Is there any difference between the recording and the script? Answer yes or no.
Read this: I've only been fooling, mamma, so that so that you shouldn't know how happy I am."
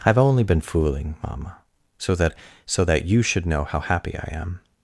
yes